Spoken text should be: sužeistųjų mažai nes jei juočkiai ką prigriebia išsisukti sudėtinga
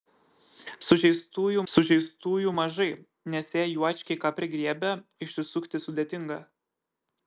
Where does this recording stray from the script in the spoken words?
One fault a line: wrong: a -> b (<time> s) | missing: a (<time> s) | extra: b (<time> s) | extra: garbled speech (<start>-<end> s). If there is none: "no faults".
extra: sužeistųjų (1.7 s)